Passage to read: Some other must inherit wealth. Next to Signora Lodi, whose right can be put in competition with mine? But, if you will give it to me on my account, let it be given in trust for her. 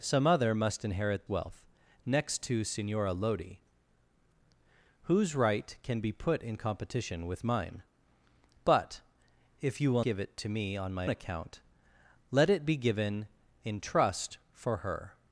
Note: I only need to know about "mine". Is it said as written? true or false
true